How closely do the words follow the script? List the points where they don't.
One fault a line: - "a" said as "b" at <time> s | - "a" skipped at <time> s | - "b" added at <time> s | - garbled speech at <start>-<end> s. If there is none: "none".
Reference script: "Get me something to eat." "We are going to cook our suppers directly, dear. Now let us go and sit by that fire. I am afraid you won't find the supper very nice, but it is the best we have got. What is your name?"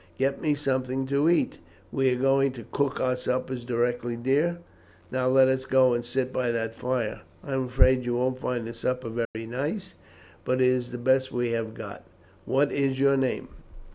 none